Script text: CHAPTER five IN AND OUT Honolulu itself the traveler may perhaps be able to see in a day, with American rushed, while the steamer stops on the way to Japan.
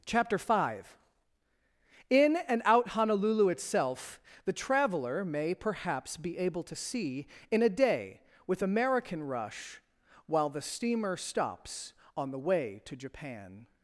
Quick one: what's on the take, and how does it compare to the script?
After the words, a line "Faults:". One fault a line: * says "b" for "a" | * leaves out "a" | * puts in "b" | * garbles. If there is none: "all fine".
CHAPTER five IN AND OUT Honolulu itself the traveler may perhaps be able to see in a day, with American rush, while the steamer stops on the way to Japan.
Faults:
* says "rush" for "rushed"